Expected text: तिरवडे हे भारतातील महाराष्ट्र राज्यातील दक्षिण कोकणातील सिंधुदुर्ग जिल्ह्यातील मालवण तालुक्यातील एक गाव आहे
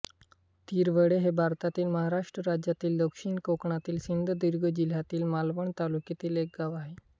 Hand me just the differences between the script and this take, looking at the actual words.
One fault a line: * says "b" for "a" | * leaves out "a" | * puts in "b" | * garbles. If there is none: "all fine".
all fine